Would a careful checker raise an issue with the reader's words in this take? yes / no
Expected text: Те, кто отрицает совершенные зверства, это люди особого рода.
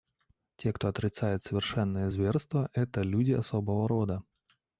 no